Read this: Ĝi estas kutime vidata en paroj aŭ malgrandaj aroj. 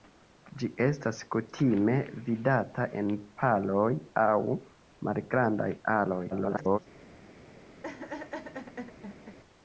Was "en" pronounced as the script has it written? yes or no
yes